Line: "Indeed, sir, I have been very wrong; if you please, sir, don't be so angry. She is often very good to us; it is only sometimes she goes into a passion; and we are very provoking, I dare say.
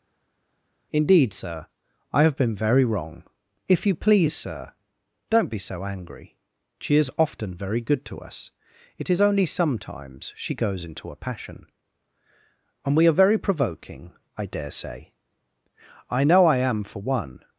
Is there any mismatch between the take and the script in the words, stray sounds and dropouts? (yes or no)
yes